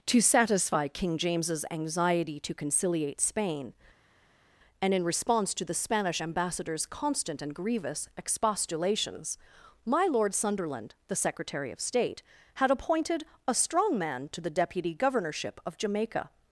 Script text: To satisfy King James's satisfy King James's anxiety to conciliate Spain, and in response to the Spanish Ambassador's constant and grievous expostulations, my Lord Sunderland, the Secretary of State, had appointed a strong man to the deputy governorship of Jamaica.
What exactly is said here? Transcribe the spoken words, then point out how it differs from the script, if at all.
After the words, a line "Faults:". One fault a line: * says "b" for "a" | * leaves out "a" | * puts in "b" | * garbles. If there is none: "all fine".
To satisfy King James's anxiety to conciliate Spain, and in response to the Spanish Ambassador's constant and grievous expostulations, my Lord Sunderland, the Secretary of State, had appointed a strong man to the deputy governorship of Jamaica.
Faults:
* leaves out "satisfy King James's"